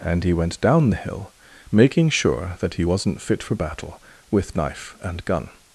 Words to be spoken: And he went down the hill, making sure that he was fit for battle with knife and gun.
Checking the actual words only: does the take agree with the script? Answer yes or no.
no